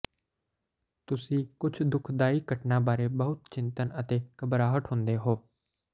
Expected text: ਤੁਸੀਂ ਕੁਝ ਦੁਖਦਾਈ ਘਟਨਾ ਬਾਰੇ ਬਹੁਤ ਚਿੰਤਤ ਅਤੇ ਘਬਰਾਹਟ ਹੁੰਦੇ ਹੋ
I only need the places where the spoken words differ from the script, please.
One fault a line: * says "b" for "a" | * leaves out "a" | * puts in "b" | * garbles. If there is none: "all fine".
all fine